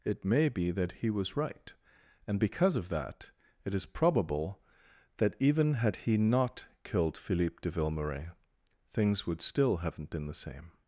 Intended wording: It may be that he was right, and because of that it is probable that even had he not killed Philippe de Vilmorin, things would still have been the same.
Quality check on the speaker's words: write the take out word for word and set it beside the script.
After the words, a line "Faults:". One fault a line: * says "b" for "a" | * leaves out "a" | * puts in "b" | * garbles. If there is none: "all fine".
It may be that he was right, and because of that it is probable that even had he not killed Philippe de Vilmorin, things would still haven't been the same.
Faults:
* says "haven't" for "have"